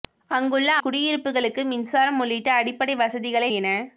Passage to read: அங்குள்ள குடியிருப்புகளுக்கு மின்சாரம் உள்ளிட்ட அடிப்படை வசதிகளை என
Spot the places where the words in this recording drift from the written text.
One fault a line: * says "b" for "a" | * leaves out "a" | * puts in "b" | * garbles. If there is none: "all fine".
all fine